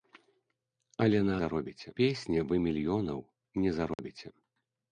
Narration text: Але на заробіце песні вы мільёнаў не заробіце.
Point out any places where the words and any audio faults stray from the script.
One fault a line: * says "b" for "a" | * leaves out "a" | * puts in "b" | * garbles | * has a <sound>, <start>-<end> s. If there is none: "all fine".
* has a dropout, 3.9-4.0 s